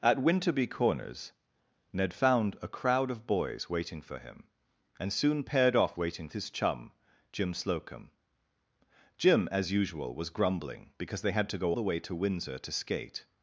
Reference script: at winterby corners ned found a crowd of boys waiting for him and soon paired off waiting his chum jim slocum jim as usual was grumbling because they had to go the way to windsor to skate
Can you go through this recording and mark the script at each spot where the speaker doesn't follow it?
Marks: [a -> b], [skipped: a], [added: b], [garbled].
at winterby corners ned found a crowd of boys waiting for him and soon paired off waiting his chum jim slocum jim as usual was grumbling because they had to go the way to windsor to skate